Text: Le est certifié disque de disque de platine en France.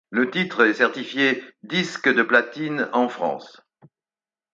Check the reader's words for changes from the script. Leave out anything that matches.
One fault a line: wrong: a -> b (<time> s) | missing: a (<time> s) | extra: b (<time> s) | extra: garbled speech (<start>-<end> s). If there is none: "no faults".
extra: titre (0.3 s)
missing: disque de (2.2 s)